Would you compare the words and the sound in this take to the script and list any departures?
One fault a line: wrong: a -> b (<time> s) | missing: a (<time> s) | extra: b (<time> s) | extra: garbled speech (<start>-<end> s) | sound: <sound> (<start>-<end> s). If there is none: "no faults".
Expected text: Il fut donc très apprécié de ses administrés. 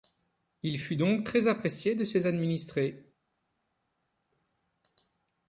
no faults